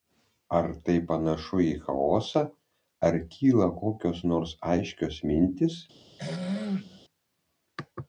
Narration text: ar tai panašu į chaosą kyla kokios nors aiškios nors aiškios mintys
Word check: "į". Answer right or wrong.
right